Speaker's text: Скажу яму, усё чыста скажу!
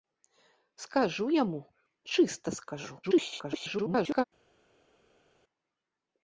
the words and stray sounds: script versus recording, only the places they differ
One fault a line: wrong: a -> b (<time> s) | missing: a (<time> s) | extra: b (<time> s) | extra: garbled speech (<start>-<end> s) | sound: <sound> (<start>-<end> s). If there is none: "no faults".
missing: усё (1.6 s)
extra: garbled speech (3.0-4.2 s)